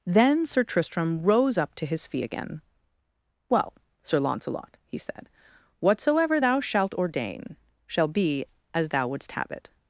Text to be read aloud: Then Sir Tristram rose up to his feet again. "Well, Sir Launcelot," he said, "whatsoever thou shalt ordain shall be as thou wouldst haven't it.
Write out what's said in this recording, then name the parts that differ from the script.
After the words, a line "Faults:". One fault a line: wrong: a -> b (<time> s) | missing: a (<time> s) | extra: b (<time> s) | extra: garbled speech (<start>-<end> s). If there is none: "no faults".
Then Sir Tristram rose up to his feet again. "Well, Sir Launcelot," he said, "whatsoever thou shalt ordain shall be as thou wouldst have it.
Faults:
wrong: haven't -> have (9.3 s)